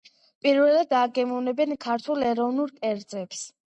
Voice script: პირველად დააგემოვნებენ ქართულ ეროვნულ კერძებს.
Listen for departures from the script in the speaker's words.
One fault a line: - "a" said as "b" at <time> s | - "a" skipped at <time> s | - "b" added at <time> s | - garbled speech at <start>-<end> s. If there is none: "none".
none